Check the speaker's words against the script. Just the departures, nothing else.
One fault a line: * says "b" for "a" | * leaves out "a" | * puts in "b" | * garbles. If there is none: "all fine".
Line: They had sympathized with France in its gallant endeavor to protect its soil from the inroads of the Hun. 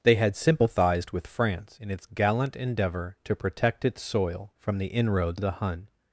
all fine